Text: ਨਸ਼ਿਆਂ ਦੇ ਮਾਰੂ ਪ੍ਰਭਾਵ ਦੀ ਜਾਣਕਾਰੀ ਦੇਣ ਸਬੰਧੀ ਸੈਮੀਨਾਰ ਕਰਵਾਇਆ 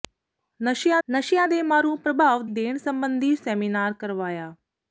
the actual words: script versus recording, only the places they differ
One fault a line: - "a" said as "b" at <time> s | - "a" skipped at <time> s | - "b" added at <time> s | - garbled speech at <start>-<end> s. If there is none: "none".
- "ਨਸ਼ਿਆਂ" added at 1.1 s
- "ਦੀ ਜਾਣਕਾਰੀ" skipped at 2.5 s